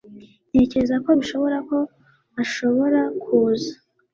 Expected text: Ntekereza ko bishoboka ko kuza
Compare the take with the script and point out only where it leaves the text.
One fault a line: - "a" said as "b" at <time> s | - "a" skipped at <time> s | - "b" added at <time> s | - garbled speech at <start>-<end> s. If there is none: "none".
- "ashobora" added at 2.4 s